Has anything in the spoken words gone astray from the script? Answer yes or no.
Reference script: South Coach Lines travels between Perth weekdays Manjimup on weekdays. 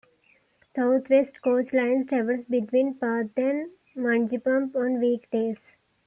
yes